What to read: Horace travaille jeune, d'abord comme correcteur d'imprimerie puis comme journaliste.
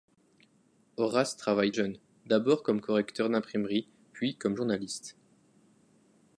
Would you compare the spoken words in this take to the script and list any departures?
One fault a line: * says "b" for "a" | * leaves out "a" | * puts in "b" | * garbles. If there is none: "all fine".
all fine